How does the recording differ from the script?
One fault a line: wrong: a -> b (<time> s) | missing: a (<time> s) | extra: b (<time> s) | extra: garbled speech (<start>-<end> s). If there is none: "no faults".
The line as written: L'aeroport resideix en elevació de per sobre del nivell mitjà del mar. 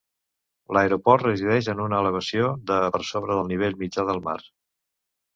extra: una (1.8 s)